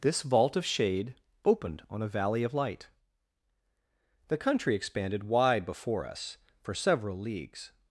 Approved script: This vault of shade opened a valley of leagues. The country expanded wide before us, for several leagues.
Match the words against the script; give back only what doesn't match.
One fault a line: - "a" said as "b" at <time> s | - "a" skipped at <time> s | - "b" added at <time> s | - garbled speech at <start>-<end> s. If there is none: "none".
- "on" added at 1.9 s
- "leagues" said as "light" at 2.5 s